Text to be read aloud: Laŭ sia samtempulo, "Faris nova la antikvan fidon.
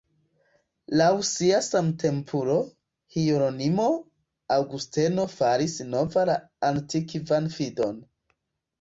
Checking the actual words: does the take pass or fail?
fail